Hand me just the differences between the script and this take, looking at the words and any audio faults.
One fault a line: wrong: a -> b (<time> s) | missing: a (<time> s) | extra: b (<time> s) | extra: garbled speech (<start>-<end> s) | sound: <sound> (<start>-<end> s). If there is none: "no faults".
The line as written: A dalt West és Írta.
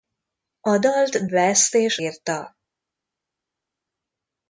no faults